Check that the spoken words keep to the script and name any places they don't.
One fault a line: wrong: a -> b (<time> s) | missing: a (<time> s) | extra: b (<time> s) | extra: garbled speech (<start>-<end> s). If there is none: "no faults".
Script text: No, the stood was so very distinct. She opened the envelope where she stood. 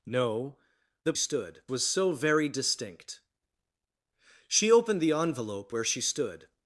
no faults